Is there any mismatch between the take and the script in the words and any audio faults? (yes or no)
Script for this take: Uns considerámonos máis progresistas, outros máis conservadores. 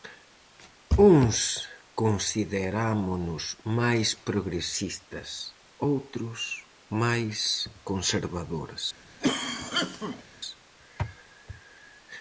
yes